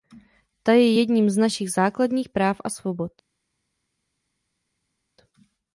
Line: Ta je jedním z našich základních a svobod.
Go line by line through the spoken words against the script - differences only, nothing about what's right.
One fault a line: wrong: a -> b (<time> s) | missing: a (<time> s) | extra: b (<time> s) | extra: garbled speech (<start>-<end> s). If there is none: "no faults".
extra: práv (2.3 s)